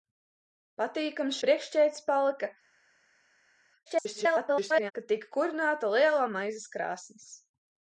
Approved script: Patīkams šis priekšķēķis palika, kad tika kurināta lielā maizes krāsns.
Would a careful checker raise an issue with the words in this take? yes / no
yes